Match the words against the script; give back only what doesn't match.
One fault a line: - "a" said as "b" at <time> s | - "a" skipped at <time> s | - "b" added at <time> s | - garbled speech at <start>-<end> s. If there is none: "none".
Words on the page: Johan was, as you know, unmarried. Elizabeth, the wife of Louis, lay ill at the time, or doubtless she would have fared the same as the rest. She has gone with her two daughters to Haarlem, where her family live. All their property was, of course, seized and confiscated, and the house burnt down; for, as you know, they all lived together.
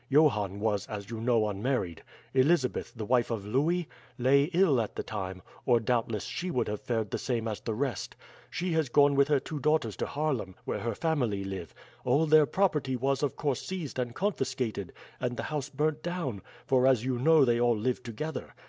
none